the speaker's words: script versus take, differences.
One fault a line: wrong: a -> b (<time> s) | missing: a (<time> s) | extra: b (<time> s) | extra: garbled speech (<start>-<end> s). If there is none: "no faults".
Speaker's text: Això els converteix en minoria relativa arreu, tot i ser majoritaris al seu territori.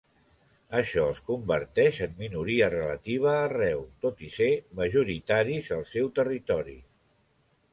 no faults